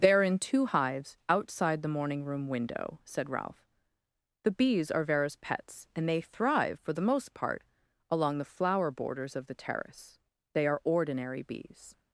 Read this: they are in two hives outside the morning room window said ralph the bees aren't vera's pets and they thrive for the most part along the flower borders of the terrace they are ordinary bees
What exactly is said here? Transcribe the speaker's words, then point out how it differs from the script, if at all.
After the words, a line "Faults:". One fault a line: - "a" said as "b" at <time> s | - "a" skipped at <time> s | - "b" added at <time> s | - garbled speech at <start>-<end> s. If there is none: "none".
they are in two hives outside the morning room window said ralph the bees are vera's pets and they thrive for the most part along the flower borders of the terrace they are ordinary bees
Faults:
- "aren't" said as "are" at 4.9 s